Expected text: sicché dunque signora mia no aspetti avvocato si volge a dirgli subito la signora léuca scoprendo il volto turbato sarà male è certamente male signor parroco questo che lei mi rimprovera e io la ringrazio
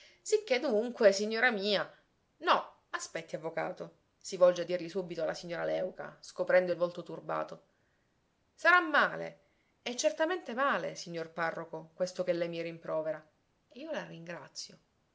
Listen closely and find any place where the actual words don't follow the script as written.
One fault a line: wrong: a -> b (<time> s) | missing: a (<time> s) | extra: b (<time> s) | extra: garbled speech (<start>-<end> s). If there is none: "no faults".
no faults